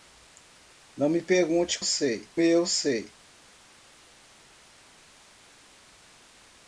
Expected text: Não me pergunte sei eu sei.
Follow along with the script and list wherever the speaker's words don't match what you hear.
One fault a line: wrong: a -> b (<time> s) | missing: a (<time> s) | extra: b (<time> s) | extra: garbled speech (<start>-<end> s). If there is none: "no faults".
no faults